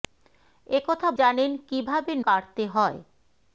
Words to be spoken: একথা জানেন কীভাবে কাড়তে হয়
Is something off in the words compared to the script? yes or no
no